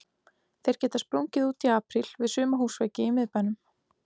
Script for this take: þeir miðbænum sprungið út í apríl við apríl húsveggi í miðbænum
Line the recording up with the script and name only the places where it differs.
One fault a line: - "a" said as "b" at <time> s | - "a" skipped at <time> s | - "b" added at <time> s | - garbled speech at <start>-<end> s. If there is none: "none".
- "miðbænum" said as "geta" at 0.8 s
- "apríl" said as "suma" at 2.4 s